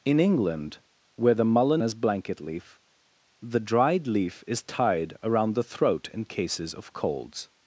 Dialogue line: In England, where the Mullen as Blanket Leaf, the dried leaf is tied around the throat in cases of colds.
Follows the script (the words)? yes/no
yes